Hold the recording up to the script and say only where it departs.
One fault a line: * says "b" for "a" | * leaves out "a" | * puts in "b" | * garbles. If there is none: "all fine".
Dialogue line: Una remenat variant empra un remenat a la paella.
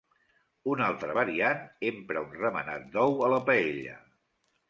* says "altra" for "remenat"
* puts in "d'ou"